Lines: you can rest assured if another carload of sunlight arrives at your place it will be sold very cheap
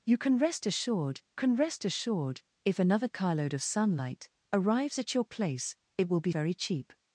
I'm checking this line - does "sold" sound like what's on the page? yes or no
no